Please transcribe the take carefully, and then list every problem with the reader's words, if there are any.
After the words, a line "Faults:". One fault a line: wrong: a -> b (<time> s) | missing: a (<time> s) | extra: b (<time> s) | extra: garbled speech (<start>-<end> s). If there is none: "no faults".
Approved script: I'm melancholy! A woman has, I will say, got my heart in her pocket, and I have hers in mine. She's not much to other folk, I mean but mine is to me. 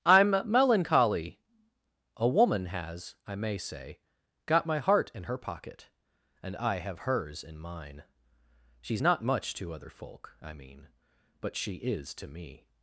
I'm melancholy! A woman has, I may say, got my heart in her pocket, and I have hers in mine. She's not much to other folk, I mean but she is to me.
Faults:
wrong: will -> may (3.4 s)
wrong: mine -> she (11.5 s)